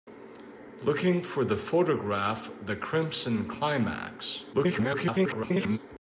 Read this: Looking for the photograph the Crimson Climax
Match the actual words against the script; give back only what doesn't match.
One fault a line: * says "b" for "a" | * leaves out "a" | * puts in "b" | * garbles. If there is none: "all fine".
* garbles